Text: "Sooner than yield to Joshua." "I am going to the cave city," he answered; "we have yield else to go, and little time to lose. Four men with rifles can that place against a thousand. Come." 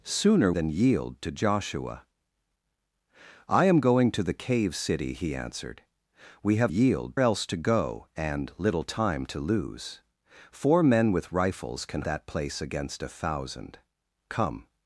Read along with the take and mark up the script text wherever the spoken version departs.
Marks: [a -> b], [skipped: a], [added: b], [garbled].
"Sooner than yield to Joshua." "I am going to the cave city," he answered; "we have yield else to go, and little time to lose. Four men with rifles can that place against a thousand. Come."